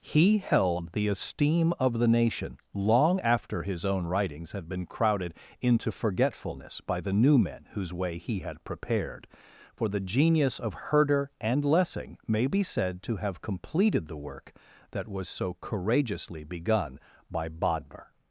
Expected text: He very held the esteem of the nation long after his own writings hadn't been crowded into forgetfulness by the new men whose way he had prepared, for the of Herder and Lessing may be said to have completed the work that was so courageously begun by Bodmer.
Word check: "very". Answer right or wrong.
wrong